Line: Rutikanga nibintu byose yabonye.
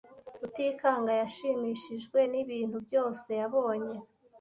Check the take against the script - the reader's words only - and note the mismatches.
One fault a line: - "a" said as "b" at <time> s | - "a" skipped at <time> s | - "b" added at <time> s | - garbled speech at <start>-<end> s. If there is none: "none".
- "yashimishijwe" added at 1.2 s